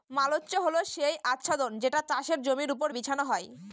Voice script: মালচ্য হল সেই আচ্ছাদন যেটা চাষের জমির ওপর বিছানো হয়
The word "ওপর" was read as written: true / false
true